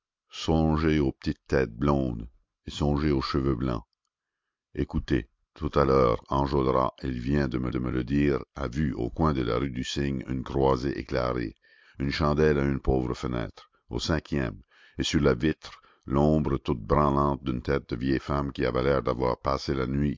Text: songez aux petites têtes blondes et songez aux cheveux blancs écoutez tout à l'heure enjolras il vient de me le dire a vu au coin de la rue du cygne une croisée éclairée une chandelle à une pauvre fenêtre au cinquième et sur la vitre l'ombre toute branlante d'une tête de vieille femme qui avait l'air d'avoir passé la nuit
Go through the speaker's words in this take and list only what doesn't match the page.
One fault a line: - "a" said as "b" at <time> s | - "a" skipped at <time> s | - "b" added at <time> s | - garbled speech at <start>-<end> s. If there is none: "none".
- "de me" added at 7.7 s